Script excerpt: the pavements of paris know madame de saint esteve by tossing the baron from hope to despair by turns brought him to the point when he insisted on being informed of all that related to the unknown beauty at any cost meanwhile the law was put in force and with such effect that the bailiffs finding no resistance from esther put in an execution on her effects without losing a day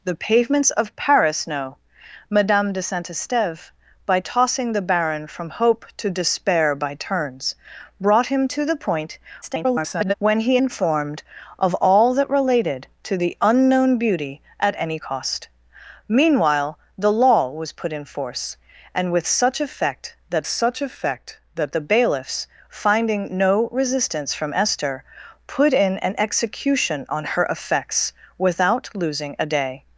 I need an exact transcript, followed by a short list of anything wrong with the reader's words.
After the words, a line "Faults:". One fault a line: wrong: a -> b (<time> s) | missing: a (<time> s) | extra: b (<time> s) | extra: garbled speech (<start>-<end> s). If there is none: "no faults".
the pavements of paris know madame de saint esteve by tossing the baron from hope to despair by turns brought him to the point [garbled] when he informed of all that related to the unknown beauty at any cost meanwhile the law was put in force and with such effect that such effect that the bailiffs finding no resistance from esther put in an execution on her effects without losing a day
Faults:
extra: garbled speech (9.4-10.1 s)
missing: insisted on being (10.6 s)
extra: such effect that (20.5 s)